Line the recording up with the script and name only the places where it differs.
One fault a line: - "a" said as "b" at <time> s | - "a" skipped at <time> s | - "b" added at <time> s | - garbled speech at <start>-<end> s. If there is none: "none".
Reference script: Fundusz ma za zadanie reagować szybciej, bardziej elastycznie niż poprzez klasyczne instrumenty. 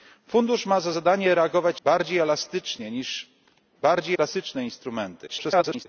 - "szybciej" skipped at 1.8 s
- "poprzez" said as "bardziej" at 3.8 s
- garbled speech at 5.3-5.9 s